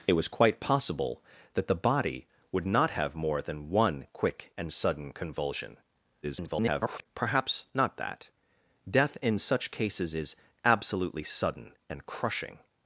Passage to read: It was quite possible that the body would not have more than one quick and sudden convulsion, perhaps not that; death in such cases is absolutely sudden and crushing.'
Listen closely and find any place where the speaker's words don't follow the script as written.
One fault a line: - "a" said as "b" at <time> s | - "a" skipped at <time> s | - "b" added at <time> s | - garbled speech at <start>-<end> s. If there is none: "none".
- garbled speech at 6.2-7.1 s